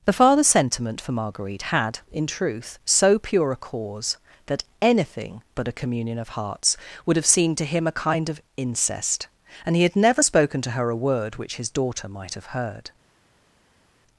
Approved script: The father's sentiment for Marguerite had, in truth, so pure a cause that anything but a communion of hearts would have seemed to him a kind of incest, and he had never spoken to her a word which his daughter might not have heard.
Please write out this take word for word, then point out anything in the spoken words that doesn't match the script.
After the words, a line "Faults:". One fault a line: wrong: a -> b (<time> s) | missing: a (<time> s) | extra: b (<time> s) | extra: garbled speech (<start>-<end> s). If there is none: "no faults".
The father's sentiment for Marguerite had, in truth, so pure a cause that anything but a communion of hearts would have seemed to him a kind of incest, and he had never spoken to her a word which his daughter might have heard.
Faults:
missing: not (12.4 s)